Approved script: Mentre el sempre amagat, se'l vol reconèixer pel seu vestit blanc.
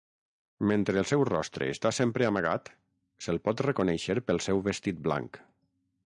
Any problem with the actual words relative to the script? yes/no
yes